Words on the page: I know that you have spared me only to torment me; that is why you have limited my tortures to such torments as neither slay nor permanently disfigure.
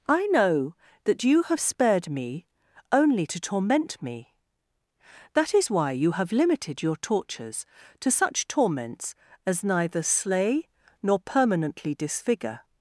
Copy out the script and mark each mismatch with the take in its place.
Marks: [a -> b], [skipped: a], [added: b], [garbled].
I know that you have spared me only to torment me; that is why you have limited [my -> your] tortures to such torments as neither slay nor permanently disfigure.